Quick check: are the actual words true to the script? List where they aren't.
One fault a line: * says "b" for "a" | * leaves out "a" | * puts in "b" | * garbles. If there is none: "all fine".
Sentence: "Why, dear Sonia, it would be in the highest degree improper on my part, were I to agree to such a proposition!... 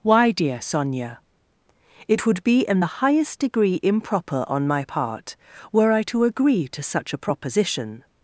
all fine